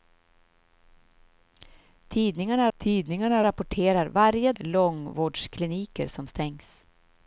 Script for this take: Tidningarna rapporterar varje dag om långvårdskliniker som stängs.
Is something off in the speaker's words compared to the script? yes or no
yes